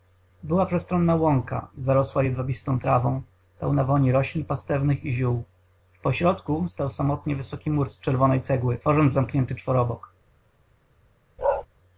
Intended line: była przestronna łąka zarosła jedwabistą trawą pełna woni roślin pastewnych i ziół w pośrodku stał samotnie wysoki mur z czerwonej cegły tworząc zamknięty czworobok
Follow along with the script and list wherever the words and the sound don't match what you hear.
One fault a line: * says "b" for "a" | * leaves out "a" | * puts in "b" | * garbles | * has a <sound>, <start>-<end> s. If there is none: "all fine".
* has a bark, 11.4-11.7 s